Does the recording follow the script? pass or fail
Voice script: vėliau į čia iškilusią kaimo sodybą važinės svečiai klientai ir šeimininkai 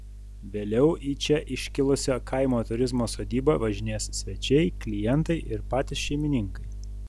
fail